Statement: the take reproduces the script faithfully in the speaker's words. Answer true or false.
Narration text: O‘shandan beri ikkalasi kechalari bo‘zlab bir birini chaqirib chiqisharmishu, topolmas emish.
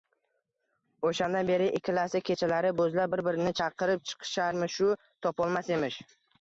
true